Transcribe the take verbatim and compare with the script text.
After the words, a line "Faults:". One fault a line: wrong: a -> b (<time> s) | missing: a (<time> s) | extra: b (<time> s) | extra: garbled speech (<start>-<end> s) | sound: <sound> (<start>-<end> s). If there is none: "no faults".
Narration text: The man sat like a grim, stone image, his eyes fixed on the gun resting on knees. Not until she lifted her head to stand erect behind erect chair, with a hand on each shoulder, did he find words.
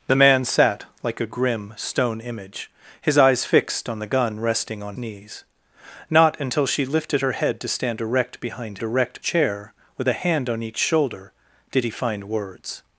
The man sat like a grim, stone image, his eyes fixed on the gun resting on knees. Not until she lifted her head to stand erect behind erect chair, with a hand on each shoulder, did he find words.
Faults:
no faults